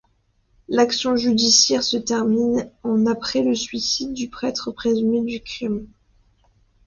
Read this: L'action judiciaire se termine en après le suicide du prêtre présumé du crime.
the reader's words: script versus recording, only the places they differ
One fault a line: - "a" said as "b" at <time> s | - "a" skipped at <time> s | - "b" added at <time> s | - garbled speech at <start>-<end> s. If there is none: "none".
none